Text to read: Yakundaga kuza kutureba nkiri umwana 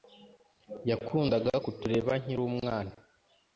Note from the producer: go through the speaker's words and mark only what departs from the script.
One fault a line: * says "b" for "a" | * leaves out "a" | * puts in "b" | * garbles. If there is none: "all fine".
* leaves out "kuza"